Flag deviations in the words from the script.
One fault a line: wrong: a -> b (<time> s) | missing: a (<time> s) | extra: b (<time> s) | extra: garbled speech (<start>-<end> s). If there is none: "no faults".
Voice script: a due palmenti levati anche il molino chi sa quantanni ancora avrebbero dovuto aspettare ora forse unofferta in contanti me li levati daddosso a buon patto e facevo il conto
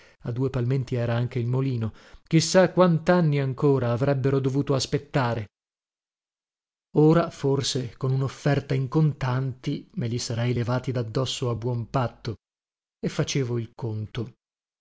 wrong: levati -> era (0.9 s)
extra: con (8.0 s)
extra: sarei (10.2 s)